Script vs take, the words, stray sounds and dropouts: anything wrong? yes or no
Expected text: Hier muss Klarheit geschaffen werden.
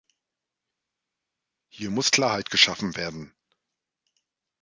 no